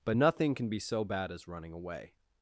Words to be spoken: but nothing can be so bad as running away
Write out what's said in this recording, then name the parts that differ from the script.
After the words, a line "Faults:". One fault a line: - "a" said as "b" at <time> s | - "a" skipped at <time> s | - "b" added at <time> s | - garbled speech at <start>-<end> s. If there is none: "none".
but nothing can be so bad as running away
Faults:
none